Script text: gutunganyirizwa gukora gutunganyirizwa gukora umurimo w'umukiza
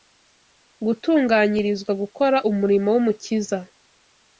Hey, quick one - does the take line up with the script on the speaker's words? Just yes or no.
no